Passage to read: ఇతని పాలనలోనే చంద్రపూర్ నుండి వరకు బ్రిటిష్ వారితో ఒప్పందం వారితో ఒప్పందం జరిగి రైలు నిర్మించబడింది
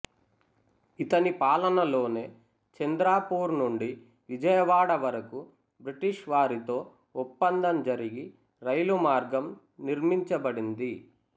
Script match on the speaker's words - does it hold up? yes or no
no